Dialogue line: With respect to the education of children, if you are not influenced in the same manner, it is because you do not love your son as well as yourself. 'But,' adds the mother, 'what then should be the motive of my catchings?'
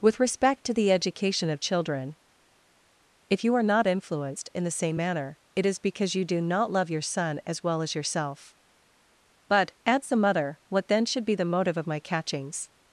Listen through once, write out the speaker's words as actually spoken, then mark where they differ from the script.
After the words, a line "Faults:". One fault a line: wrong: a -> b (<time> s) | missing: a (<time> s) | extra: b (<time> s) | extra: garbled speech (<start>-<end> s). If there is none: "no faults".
With respect to the education of children, if you are not influenced in the same manner, it is because you do not love your son as well as yourself. 'But,' adds the mother, 'what then should be the motive of my catchings?'
Faults:
no faults